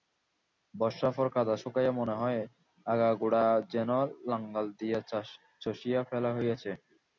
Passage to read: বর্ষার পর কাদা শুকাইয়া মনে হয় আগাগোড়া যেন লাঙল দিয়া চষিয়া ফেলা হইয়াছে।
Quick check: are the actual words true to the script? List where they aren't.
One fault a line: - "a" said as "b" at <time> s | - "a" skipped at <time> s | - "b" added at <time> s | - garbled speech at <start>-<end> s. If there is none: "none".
none